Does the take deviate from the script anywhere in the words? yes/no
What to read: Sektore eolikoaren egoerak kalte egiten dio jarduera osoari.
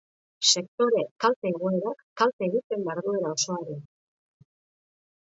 yes